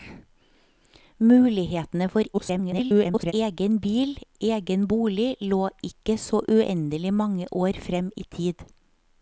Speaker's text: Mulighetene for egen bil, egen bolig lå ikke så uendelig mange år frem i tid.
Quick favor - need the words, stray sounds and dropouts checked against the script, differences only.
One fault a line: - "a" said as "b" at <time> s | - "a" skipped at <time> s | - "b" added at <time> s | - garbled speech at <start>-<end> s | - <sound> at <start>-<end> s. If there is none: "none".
- garbled speech at 2.3-3.3 s